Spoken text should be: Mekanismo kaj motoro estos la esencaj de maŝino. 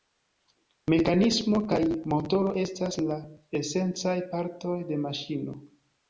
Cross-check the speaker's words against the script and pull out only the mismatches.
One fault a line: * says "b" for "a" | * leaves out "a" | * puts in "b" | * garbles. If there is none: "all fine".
* says "estas" for "estos"
* puts in "partoj"